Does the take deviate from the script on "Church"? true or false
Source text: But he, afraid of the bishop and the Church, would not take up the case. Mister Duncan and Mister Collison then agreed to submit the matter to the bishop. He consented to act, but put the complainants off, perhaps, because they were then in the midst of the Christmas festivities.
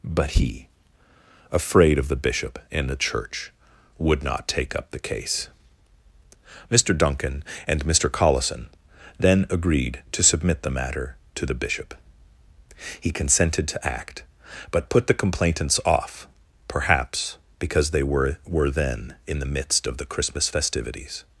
false